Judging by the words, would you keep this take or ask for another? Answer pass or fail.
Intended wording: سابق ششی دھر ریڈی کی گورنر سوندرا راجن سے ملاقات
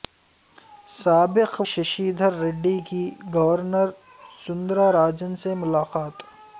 pass